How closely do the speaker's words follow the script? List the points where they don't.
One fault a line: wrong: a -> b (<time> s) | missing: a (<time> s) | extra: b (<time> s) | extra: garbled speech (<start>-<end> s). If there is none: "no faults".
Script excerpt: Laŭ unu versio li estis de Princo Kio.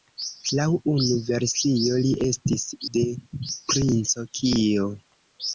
no faults